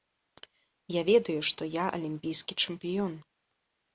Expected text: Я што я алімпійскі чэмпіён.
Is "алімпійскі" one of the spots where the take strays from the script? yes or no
no